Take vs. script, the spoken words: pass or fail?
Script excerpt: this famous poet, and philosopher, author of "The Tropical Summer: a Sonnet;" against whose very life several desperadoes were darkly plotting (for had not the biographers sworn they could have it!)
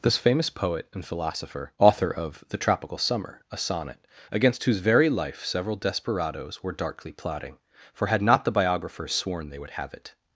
fail